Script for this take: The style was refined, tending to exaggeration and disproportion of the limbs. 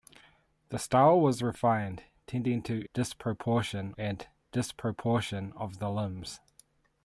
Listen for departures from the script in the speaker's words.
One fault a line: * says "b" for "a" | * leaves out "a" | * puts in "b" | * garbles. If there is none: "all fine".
* says "disproportion" for "exaggeration"